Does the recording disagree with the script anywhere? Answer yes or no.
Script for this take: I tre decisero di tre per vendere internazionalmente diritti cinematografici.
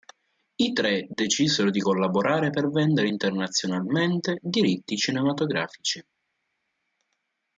yes